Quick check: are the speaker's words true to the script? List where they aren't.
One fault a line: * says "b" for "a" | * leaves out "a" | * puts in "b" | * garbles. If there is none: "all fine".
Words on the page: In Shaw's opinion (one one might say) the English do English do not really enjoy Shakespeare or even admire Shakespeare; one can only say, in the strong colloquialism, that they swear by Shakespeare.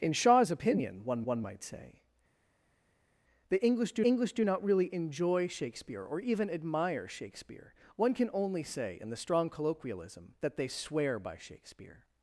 all fine